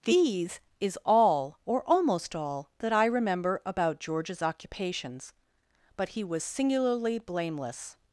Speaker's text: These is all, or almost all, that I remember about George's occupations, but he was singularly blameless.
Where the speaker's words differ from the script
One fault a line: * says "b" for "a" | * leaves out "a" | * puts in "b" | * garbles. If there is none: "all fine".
all fine